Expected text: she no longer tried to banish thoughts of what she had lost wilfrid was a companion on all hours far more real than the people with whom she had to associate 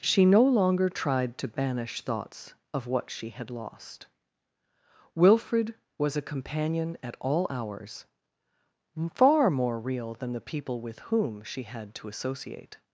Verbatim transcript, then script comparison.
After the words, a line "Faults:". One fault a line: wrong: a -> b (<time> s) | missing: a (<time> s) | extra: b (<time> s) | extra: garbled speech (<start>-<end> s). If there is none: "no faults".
she no longer tried to banish thoughts of what she had lost wilfrid was a companion at all hours far more real than the people with whom she had to associate
Faults:
wrong: on -> at (7.0 s)